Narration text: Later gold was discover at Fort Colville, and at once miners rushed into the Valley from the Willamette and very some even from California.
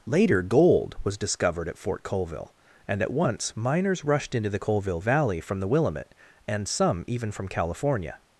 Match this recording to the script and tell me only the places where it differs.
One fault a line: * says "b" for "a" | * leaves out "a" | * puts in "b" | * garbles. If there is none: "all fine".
* says "discovered" for "discover"
* puts in "Colville"
* leaves out "very"